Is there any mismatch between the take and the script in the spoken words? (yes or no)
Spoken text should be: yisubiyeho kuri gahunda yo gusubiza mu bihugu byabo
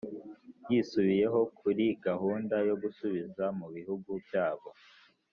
no